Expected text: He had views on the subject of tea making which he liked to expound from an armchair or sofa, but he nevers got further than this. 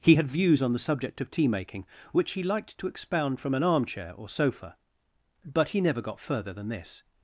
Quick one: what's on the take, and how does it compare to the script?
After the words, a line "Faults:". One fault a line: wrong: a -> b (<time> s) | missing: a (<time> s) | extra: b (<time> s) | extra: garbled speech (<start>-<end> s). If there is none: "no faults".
He had views on the subject of tea making which he liked to expound from an armchair or sofa, but he never got further than this.
Faults:
wrong: nevers -> never (5.8 s)